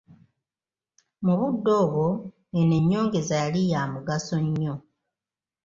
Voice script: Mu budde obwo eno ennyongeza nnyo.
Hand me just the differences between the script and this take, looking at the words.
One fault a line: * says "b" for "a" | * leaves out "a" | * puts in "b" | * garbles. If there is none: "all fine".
* puts in "yali ya mugaso"